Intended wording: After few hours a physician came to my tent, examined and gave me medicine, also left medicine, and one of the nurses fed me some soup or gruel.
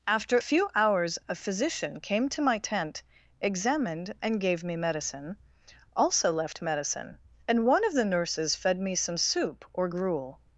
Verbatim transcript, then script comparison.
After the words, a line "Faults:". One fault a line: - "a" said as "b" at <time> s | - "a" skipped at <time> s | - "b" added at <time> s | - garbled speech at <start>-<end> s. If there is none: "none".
After few hours a physician came to my tent, examined and gave me medicine, also left medicine, and one of the nurses fed me some soup or gruel.
Faults:
none